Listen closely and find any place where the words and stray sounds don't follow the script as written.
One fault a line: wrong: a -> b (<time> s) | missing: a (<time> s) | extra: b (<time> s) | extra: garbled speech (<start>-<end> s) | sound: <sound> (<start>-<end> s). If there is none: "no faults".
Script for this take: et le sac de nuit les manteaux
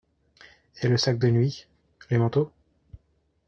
no faults